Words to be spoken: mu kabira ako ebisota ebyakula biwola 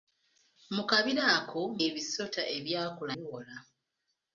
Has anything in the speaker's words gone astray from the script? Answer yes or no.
no